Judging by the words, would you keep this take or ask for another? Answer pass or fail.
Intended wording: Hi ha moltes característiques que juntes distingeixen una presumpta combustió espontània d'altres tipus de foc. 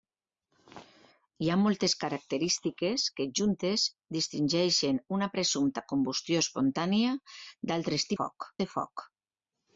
fail